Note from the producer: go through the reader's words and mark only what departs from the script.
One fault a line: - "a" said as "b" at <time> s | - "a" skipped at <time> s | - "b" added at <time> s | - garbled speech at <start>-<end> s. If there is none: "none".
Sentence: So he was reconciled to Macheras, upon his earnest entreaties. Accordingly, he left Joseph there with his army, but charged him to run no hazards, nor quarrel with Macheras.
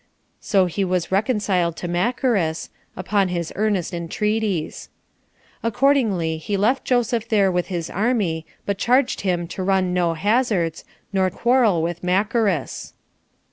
none